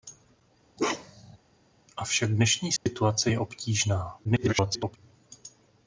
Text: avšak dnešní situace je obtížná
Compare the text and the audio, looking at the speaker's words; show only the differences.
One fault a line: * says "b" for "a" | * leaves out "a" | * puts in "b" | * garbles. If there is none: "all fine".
* garbles